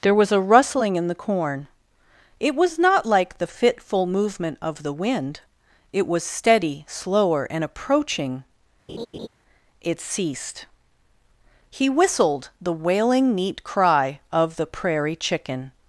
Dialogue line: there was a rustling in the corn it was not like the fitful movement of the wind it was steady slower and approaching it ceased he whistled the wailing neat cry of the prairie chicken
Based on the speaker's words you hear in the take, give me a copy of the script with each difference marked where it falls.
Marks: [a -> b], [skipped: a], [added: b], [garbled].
there was a rustling in the corn it was not like the fitful movement of the wind it was steady slower and approaching it ceased he whistled the wailing neat cry of the prairie chicken